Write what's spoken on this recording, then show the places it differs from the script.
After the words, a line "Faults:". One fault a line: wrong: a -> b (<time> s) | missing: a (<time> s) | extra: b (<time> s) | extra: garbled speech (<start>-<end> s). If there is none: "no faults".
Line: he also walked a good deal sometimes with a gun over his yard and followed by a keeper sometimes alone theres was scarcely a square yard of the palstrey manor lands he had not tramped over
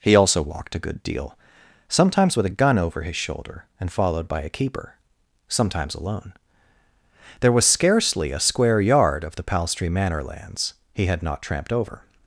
he also walked a good deal sometimes with a gun over his shoulder and followed by a keeper sometimes alone there was scarcely a square yard of the palstrey manor lands he had not tramped over
Faults:
wrong: yard -> shoulder (3.2 s)
wrong: theres -> there (7.4 s)